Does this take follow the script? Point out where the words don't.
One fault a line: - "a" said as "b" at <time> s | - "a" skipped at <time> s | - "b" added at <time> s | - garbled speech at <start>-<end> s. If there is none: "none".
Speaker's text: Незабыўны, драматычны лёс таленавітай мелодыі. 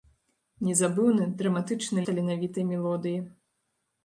- "лёс" skipped at 2.1 s